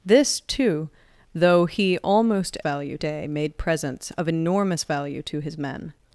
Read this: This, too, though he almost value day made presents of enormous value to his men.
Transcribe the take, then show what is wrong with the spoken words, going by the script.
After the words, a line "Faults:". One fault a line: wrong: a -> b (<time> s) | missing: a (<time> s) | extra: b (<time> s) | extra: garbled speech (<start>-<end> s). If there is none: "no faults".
This, too, though he almost value day made presents of enormous value to his men.
Faults:
no faults